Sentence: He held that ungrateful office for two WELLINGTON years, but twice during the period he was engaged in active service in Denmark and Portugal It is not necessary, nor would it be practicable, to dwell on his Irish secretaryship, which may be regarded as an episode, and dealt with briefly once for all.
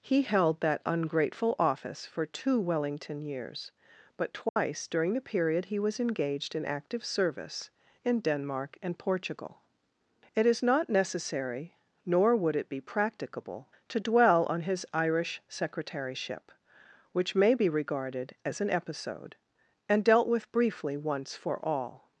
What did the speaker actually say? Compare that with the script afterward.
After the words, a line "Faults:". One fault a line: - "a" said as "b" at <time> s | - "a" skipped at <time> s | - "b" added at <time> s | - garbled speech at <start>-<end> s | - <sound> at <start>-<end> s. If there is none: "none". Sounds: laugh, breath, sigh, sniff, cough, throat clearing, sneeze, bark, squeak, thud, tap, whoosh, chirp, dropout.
He held that ungrateful office for two WELLINGTON years, but twice during the period he was engaged in active service in Denmark and Portugal It is not necessary, nor would it be practicable, to dwell on his Irish secretaryship, which may be regarded as an episode, and dealt with briefly once for all.
Faults:
- dropout at 4.5-4.6 s